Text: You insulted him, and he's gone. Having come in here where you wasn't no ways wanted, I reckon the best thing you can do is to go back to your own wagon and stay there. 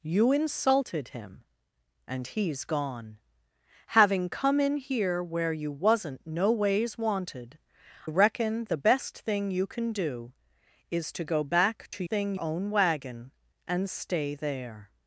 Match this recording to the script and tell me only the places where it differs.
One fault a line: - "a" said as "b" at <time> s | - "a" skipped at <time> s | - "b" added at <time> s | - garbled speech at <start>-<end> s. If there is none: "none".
- "I" skipped at 7.6 s
- "your" said as "thing" at 12.0 s